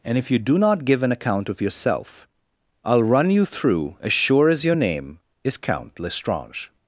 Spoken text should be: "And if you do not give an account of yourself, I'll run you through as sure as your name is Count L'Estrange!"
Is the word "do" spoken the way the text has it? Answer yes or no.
yes